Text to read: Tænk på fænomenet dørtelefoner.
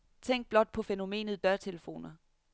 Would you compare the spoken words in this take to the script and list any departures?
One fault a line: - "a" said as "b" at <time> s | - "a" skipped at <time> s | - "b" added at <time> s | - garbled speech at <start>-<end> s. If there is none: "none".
- "blot" added at 0.5 s